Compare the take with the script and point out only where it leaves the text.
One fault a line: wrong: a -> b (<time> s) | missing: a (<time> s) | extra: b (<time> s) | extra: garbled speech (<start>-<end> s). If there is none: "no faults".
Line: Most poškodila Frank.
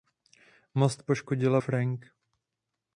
no faults